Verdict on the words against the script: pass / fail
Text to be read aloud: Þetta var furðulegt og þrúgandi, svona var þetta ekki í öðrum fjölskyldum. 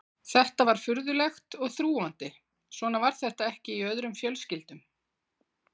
pass